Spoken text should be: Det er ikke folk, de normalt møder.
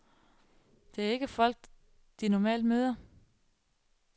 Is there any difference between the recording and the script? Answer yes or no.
no